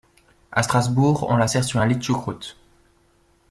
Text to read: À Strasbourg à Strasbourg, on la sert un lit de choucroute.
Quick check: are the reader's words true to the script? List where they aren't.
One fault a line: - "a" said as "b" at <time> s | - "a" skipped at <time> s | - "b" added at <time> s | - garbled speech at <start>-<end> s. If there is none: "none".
- "à Strasbourg" skipped at 1.3 s
- "sur" added at 1.6 s